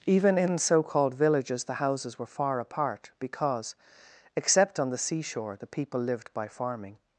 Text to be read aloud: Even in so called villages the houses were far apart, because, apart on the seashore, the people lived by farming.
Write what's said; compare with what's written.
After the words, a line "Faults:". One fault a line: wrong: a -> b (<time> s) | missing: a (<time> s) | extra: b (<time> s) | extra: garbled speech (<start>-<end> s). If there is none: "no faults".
Even in so called villages the houses were far apart, because, except on the seashore, the people lived by farming.
Faults:
wrong: apart -> except (4.3 s)